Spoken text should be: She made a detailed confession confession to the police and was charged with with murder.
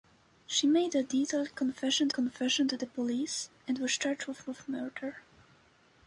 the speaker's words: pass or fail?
pass